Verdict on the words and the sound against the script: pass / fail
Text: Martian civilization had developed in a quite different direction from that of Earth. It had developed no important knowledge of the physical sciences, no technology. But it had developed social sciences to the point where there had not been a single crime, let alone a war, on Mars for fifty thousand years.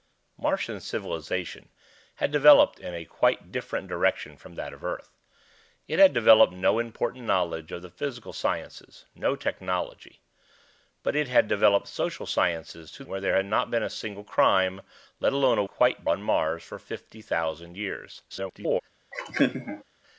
fail